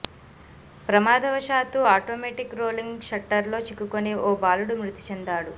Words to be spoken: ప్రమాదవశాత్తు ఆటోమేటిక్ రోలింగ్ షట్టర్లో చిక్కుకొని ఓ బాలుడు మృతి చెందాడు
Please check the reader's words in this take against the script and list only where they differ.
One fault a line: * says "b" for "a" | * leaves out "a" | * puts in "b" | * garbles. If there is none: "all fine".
all fine